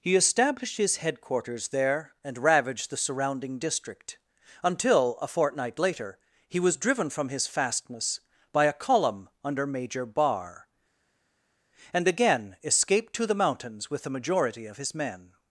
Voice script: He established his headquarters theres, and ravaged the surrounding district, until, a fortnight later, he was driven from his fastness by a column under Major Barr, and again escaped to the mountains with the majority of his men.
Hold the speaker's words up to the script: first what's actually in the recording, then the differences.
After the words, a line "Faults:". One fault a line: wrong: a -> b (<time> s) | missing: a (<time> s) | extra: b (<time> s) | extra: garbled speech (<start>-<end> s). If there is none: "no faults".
He established his headquarters there, and ravaged the surrounding district, until, a fortnight later, he was driven from his fastness by a column under Major Barr, and again escaped to the mountains with the majority of his men.
Faults:
wrong: theres -> there (1.7 s)